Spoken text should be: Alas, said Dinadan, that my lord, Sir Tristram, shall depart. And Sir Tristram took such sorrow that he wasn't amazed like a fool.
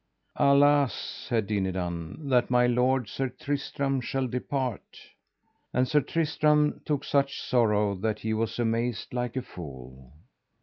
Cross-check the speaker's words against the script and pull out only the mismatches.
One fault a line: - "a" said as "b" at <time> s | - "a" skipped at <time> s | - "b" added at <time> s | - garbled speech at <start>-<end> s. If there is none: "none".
- "wasn't" said as "was" at 8.3 s